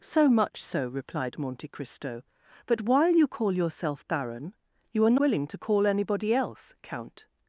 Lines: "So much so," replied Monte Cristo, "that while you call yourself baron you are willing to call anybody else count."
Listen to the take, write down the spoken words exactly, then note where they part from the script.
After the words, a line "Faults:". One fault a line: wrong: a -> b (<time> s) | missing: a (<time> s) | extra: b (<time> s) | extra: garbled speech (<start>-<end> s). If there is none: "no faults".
"So much so," replied Monte Cristo, "that while you call yourself baron you are willing to call anybody else count."
Faults:
no faults